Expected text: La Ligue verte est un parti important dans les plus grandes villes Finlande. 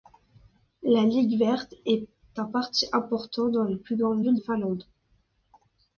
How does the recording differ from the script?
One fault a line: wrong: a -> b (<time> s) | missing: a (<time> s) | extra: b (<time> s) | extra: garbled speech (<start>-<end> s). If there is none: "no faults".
no faults